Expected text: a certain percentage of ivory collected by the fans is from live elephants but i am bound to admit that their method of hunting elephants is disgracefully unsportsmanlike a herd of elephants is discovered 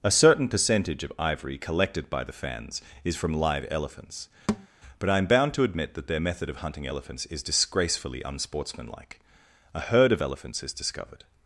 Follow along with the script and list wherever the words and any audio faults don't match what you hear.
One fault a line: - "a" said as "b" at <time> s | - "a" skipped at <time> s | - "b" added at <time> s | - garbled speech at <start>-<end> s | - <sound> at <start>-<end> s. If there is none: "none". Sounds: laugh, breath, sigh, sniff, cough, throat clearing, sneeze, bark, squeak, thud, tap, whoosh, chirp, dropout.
- thud at 4.5-4.7 s